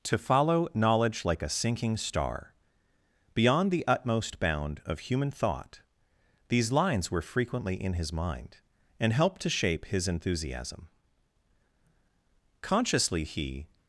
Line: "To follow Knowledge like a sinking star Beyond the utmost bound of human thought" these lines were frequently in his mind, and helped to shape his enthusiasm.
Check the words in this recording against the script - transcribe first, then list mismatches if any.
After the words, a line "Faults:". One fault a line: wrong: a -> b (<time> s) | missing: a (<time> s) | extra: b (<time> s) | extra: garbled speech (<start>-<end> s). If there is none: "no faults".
"To follow Knowledge like a sinking star Beyond the utmost bound of human thought" these lines were frequently in his mind, and helped to shape his enthusiasm. Consciously he
Faults:
extra: Consciously he (12.6 s)